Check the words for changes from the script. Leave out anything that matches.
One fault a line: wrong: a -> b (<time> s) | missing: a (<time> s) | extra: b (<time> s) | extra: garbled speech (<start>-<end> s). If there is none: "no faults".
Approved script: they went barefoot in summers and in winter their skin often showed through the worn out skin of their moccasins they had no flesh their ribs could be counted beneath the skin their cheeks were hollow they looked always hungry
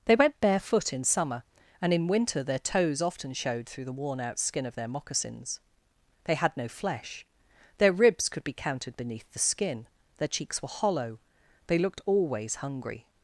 wrong: summers -> summer (1.0 s)
wrong: skin -> toes (2.6 s)